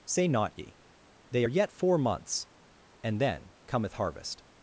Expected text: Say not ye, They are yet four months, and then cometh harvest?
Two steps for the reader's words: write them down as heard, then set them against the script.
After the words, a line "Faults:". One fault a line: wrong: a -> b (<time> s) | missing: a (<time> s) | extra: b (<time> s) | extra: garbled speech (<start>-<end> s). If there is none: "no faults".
Say not ye, They are yet four months, and then cometh harvest?
Faults:
no faults